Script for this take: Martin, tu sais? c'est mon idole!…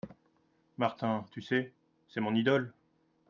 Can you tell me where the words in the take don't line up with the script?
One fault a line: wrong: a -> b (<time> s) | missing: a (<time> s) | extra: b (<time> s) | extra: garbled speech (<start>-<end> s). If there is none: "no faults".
no faults